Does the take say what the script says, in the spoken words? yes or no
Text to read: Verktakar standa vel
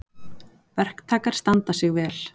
no